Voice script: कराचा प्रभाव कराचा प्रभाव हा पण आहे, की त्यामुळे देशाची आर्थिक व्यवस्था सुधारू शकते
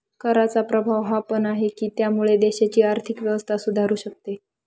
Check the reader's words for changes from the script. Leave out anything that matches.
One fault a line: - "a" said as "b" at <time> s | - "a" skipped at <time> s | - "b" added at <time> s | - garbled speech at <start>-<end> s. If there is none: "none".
- "कराचा प्रभाव" skipped at 1.0 s